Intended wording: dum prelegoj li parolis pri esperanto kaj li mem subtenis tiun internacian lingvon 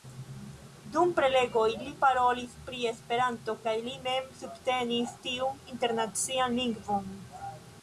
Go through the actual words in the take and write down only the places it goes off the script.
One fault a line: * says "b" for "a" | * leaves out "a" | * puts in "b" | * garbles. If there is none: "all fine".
all fine